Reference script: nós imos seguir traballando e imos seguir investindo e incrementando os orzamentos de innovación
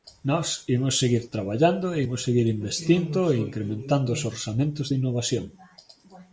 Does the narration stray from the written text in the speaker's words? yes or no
no